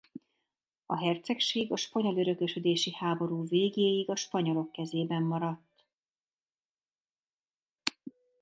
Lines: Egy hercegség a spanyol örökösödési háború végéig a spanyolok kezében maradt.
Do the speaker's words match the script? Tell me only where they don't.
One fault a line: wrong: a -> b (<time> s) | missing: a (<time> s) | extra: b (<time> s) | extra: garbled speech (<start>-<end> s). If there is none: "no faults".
wrong: Egy -> A (0.8 s)